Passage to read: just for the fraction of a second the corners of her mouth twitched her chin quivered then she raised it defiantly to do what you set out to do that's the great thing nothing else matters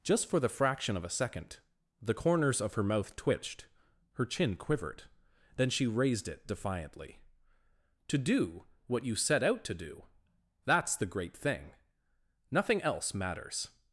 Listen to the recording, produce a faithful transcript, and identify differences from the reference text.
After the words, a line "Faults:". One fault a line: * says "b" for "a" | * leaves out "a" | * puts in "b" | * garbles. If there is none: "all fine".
just for the fraction of a second the corners of her mouth twitched her chin quivered then she raised it defiantly to do what you set out to do that's the great thing nothing else matters
Faults:
all fine